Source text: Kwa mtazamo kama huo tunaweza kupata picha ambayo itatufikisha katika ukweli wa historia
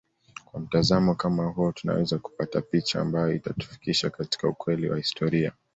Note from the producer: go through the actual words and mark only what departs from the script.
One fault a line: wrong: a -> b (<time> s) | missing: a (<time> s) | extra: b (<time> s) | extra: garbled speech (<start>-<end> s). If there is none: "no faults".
no faults